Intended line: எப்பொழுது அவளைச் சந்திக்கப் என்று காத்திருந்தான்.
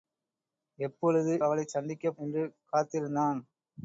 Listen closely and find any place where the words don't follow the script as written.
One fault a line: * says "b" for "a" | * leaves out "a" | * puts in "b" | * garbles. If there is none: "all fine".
all fine